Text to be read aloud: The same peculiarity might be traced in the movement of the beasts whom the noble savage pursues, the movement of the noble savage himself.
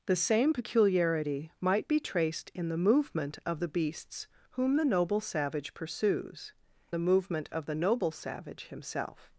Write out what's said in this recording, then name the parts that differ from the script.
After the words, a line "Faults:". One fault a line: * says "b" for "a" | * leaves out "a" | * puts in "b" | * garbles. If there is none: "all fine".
The same peculiarity might be traced in the movement of the beasts whom the noble savage pursues, the movement of the noble savage himself.
Faults:
all fine